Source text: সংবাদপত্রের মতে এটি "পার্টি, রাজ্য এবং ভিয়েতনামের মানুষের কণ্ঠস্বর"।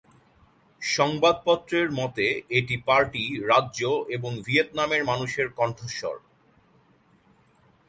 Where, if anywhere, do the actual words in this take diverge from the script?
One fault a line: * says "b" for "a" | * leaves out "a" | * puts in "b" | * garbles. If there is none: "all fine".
all fine